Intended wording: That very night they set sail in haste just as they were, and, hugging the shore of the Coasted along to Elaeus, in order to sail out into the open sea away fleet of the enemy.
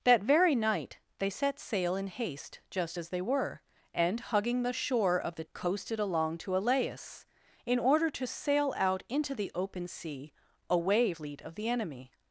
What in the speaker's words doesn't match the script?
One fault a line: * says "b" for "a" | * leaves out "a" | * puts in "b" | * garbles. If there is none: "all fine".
all fine